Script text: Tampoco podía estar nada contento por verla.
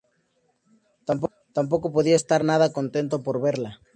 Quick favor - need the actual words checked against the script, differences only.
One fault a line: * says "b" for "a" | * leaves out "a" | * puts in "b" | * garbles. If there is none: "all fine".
all fine